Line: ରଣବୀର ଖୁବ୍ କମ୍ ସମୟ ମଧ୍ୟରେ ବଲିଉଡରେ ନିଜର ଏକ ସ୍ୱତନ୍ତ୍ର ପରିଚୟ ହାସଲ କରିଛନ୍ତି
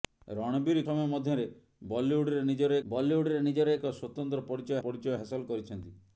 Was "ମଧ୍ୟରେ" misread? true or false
false